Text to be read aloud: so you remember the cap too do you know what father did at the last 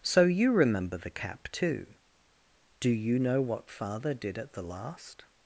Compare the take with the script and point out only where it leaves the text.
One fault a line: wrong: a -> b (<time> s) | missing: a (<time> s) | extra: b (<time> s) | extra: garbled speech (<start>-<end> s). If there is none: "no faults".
no faults